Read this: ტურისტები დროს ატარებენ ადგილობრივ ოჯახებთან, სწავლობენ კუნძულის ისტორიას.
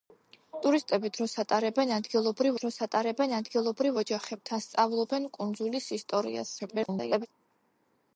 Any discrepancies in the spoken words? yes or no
yes